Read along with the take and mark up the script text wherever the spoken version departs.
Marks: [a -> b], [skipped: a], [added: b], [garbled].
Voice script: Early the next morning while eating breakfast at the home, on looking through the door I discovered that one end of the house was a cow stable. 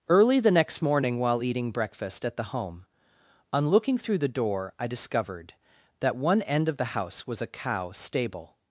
Early the next morning while eating breakfast at the home, on looking through the door I discovered that one end of the house was a cow stable.